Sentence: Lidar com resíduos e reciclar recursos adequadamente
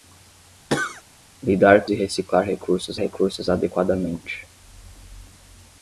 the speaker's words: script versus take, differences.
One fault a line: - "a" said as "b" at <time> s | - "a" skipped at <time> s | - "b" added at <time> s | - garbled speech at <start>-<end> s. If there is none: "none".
- "resíduos" skipped at 1.9 s
- "recursos" added at 3.0 s